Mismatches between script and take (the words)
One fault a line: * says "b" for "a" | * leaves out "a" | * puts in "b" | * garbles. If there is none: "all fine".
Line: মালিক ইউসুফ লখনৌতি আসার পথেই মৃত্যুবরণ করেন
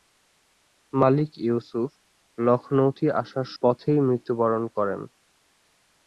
all fine